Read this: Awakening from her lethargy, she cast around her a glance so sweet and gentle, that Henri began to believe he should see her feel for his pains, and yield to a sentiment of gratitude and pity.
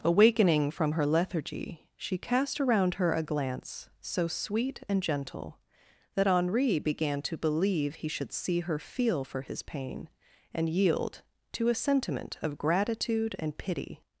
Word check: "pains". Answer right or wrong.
wrong